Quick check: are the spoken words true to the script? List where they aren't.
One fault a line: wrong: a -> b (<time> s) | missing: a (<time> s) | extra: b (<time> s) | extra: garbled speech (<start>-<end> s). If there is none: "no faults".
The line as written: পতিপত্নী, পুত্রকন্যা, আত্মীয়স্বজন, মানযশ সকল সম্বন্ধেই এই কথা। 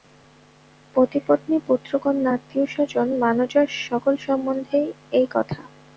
no faults